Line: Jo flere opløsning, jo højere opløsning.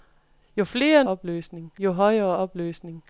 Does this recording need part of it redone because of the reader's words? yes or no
no